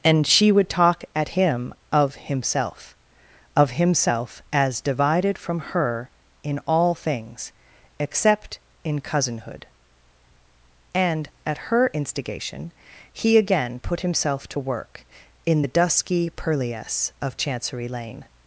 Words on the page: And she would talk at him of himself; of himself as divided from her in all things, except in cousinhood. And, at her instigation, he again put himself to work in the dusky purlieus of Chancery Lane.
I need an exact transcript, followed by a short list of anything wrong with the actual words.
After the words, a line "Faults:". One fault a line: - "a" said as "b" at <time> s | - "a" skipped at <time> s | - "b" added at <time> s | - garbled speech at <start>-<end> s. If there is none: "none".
And she would talk at him of himself; of himself as divided from her in all things, except in cousinhood. And, at her instigation, he again put himself to work in the dusky purlieus of Chancery Lane.
Faults:
none